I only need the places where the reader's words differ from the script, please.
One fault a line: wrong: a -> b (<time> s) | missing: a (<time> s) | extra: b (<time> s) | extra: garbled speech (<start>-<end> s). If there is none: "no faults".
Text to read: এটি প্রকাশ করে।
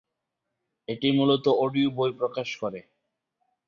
extra: মূলত অডিও বই (1.1 s)